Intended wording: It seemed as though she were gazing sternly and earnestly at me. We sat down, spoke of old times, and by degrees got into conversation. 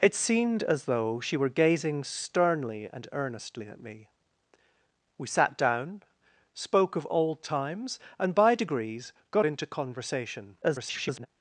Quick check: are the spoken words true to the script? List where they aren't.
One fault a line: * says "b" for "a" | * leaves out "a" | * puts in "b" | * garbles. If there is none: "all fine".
* garbles